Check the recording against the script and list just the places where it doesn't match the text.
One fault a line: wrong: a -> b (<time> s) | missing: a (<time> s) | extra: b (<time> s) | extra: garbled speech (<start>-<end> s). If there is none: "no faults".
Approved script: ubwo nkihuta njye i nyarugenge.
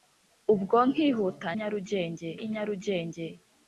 wrong: njye -> nyarugenge (1.6 s)